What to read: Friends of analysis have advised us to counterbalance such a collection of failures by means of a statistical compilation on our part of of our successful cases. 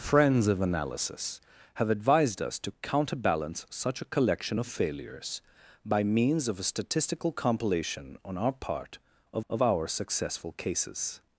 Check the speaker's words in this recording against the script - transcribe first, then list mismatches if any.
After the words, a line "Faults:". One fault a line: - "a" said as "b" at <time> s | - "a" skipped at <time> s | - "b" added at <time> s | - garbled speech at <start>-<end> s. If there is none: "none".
Friends of analysis have advised us to counterbalance such a collection of failures by means of a statistical compilation on our part of of our successful cases.
Faults:
none